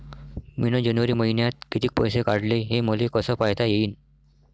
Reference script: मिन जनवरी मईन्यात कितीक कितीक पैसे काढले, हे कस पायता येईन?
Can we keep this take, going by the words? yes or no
no